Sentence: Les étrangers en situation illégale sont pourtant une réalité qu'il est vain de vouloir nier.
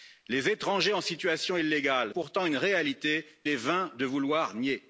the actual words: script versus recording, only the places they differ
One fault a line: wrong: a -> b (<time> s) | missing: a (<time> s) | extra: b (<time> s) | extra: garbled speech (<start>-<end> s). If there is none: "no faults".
missing: sont (2.1 s)
missing: qu'il (3.3 s)